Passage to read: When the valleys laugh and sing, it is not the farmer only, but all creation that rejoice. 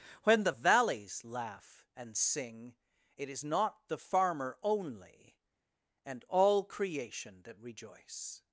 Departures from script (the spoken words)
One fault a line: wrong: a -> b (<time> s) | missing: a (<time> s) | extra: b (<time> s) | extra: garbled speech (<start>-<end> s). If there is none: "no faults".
wrong: but -> and (6.0 s)